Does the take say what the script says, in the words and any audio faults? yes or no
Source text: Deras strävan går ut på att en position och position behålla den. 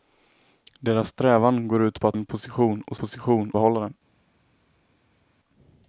yes